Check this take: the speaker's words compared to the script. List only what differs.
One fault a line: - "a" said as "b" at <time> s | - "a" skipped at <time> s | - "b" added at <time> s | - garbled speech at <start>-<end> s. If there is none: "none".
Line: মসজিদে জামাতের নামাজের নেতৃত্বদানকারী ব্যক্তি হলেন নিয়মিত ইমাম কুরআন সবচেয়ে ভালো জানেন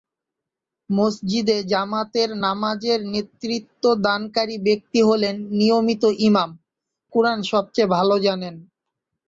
none